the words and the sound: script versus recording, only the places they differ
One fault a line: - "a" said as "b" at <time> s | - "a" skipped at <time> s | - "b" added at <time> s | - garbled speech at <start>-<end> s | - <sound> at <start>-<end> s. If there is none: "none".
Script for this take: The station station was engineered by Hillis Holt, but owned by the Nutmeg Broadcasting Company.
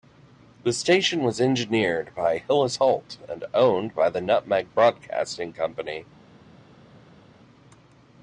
- "station" skipped at 1.2 s
- "but" said as "and" at 3.3 s